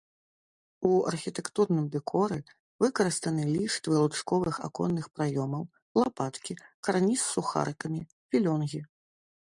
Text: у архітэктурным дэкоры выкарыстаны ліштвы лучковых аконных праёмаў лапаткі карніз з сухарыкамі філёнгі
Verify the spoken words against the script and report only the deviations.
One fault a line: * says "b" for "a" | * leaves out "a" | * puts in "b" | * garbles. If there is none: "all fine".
all fine